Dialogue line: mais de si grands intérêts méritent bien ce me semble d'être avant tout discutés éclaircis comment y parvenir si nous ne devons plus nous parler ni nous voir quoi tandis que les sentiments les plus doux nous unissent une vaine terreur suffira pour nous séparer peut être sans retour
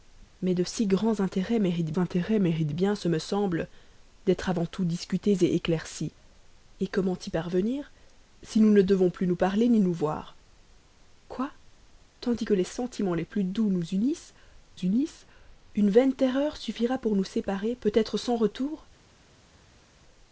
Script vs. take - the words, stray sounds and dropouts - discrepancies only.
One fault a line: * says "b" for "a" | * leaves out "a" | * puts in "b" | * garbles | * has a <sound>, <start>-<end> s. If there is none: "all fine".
* puts in "intérêts méritent"
* puts in "unissent"